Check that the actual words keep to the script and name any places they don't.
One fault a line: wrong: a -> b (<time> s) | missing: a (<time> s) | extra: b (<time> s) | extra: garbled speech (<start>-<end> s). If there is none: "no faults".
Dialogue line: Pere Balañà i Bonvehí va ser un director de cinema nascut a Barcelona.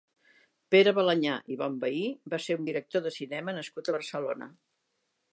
no faults